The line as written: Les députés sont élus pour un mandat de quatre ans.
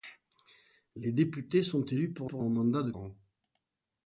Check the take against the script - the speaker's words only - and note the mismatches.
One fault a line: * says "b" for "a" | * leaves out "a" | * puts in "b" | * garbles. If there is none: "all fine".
* puts in "pour"
* leaves out "quatre"